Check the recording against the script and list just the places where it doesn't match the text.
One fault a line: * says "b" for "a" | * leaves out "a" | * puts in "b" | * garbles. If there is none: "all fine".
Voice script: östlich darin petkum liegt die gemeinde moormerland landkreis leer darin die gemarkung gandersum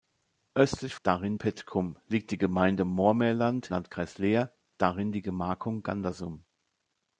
all fine